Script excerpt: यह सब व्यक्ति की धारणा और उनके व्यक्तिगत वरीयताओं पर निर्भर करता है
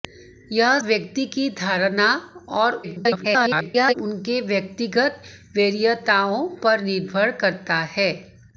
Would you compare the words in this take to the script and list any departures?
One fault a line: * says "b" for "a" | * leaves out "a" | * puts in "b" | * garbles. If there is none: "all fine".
* leaves out "सब"
* garbles